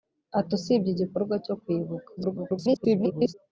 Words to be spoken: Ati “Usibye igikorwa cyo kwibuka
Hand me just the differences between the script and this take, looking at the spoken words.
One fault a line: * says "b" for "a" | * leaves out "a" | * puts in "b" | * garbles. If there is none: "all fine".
* garbles